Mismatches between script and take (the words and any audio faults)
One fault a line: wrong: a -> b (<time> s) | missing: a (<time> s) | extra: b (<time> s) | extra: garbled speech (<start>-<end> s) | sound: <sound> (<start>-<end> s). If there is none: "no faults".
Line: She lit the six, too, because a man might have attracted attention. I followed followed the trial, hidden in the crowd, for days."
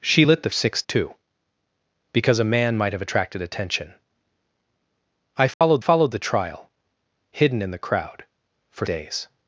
sound: dropout (5.5-5.6 s)